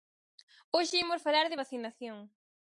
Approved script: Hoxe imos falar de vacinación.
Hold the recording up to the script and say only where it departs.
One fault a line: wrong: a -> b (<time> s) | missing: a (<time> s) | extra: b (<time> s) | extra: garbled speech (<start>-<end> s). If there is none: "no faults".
no faults